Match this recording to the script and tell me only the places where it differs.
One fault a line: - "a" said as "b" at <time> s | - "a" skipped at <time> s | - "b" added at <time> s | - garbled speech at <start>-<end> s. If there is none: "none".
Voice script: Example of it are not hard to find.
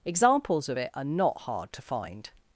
- "Example" said as "Examples" at 0.0 s